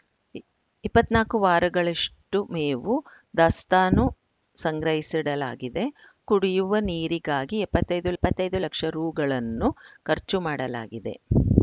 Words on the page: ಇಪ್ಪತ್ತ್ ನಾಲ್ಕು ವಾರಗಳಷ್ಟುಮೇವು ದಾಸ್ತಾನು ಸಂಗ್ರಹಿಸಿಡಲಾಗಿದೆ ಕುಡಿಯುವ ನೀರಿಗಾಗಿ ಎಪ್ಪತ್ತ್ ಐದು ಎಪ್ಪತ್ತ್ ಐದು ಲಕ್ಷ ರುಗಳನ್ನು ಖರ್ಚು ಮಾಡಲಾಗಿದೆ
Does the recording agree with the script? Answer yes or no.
yes